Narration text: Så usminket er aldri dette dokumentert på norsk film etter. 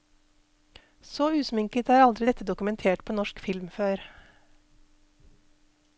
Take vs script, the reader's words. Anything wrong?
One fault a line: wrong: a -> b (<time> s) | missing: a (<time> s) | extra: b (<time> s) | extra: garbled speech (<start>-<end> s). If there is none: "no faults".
wrong: etter -> før (3.8 s)